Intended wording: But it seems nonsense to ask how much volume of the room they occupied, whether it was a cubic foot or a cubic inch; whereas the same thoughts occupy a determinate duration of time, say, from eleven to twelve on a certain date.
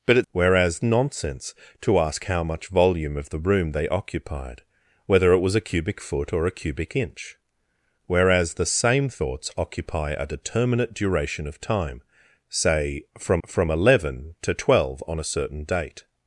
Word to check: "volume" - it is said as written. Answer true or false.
true